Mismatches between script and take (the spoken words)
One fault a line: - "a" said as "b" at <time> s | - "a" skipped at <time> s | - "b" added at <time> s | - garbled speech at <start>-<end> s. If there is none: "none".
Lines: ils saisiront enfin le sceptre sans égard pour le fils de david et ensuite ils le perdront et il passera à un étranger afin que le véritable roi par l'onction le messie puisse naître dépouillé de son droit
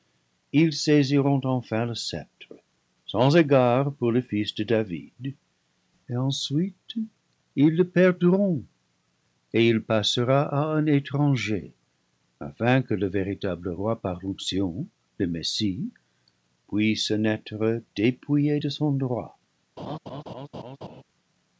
none